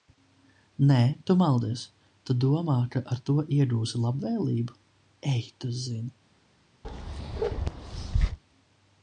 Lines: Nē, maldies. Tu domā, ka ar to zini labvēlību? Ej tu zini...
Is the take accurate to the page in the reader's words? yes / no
no